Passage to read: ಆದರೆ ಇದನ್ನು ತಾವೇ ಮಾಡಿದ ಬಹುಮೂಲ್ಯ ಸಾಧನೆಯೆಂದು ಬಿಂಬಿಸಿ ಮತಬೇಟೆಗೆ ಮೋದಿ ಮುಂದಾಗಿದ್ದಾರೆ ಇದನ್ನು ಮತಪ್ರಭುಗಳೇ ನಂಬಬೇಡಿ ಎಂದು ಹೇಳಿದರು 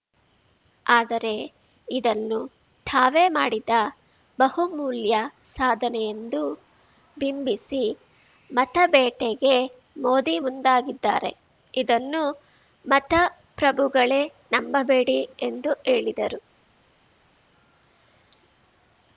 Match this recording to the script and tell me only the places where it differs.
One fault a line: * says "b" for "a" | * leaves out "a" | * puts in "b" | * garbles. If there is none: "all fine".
all fine